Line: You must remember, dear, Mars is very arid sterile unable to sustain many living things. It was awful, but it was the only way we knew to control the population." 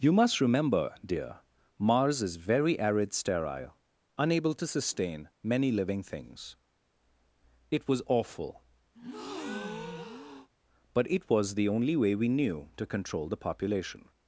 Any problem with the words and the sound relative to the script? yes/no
yes